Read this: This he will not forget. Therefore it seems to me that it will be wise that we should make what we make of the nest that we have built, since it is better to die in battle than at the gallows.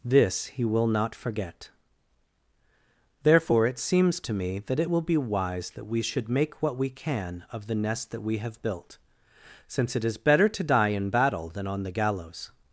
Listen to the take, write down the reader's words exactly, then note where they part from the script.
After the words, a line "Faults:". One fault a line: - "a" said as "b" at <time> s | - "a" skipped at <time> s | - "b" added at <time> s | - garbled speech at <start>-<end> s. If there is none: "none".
This he will not forget. Therefore it seems to me that it will be wise that we should make what we can of the nest that we have built, since it is better to die in battle than on the gallows.
Faults:
- "make" said as "can" at 6.9 s
- "at" said as "on" at 11.7 s